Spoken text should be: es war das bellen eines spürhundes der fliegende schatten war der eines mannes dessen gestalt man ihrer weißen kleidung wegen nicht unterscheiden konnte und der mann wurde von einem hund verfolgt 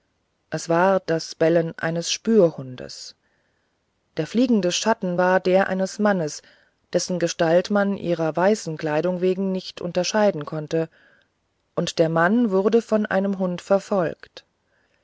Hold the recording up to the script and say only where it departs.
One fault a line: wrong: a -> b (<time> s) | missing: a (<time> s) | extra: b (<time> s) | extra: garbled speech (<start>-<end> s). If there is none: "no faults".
no faults